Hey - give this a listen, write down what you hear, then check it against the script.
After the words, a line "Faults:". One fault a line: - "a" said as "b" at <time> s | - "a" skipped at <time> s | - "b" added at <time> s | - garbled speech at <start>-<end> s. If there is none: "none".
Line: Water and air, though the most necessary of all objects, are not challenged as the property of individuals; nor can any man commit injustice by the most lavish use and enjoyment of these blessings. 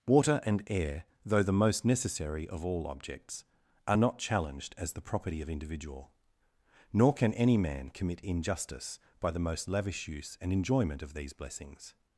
Water and air, though the most necessary of all objects, are not challenged as the property of individual; nor can any man commit injustice by the most lavish use and enjoyment of these blessings.
Faults:
- "individuals" said as "individual" at 5.5 s